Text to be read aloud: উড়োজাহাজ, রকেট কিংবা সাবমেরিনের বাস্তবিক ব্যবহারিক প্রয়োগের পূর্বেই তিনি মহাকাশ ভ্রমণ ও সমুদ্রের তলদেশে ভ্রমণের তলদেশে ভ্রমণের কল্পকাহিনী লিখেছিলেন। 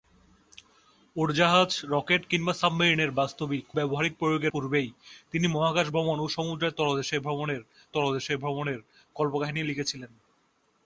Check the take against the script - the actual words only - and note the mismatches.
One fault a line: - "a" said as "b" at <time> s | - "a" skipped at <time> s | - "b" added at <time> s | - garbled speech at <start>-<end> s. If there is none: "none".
none